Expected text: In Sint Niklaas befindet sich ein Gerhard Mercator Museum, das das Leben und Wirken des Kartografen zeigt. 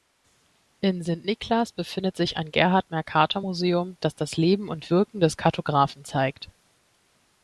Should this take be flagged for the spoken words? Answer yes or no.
no